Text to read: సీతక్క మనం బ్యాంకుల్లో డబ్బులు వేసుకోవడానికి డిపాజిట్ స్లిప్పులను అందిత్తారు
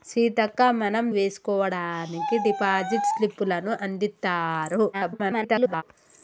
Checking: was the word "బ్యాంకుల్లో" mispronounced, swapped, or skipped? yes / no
yes